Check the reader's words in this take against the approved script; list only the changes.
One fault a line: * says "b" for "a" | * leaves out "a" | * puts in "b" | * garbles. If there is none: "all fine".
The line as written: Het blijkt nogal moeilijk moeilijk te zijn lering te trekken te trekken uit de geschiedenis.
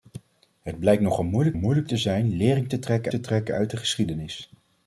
all fine